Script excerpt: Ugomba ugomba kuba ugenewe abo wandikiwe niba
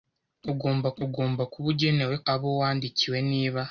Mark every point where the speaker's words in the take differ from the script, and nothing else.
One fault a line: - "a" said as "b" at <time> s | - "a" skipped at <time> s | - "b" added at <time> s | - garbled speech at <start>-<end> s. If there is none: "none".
none